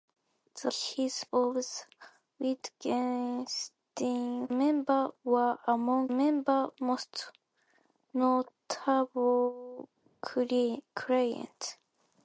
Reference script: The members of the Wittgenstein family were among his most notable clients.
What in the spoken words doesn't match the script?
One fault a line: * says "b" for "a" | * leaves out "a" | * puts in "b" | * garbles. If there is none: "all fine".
* says "his" for "members"
* says "members" for "family"
* says "members" for "his"